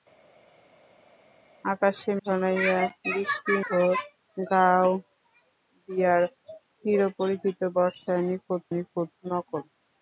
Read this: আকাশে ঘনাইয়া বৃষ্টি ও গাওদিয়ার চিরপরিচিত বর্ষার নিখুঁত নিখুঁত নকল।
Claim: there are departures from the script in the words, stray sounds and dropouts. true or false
false